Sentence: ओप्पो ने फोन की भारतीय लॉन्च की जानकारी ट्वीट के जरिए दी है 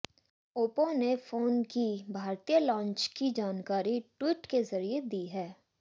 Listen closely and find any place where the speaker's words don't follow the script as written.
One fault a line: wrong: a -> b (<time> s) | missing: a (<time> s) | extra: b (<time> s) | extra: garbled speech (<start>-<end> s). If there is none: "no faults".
no faults